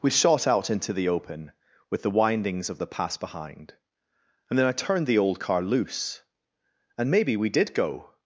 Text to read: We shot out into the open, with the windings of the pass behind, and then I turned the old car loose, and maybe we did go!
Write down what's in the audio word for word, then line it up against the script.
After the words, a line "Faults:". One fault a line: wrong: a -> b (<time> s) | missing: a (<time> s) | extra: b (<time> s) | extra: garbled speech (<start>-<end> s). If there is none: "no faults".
We shot out into the open, with the windings of the pass behind, and then I turned the old car loose, and maybe we did go!
Faults:
no faults